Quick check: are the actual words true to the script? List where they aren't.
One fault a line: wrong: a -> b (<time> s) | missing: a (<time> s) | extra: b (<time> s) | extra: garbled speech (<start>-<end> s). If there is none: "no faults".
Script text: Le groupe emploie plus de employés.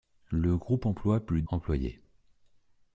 missing: de (1.4 s)